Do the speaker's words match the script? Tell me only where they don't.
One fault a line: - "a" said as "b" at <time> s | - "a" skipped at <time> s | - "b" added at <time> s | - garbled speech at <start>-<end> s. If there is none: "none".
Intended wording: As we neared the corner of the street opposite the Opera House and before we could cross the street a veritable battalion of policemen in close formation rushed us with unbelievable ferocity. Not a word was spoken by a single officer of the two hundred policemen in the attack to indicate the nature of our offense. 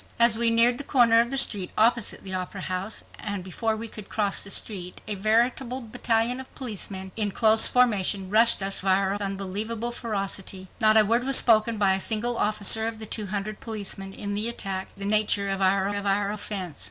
- "with" said as "our" at 8.8 s
- "to indicate the nature" said as "the nature of our" at 15.0 s